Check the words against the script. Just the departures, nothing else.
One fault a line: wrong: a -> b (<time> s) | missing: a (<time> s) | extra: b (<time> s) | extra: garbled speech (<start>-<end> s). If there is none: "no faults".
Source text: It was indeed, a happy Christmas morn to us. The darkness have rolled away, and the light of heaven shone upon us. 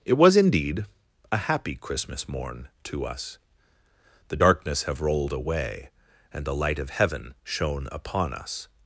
no faults